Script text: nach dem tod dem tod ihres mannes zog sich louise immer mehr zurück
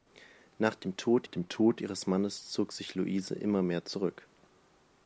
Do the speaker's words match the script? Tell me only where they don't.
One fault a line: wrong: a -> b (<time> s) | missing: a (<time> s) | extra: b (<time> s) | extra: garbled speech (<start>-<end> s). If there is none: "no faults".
no faults